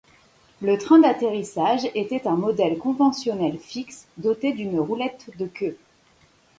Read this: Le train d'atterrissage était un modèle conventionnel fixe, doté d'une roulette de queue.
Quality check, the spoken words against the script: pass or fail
pass